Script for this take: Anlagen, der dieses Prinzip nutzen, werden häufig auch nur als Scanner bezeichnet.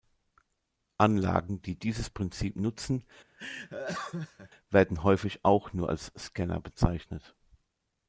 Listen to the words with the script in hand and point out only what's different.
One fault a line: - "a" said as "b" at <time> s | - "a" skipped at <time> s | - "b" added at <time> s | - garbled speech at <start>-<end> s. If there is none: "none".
- "der" said as "die" at 1.6 s